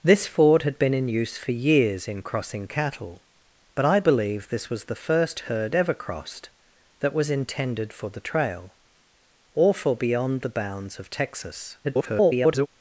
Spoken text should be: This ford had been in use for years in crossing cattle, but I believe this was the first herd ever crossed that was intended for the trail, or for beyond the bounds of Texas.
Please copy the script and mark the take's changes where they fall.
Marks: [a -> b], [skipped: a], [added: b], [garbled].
This ford had been in use for years in crossing cattle, but I believe this was the first herd ever crossed that was intended for the trail, or for beyond the bounds of Texas. [garbled]